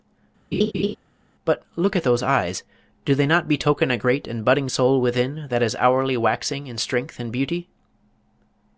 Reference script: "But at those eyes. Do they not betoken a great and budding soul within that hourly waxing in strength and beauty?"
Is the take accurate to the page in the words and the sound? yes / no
no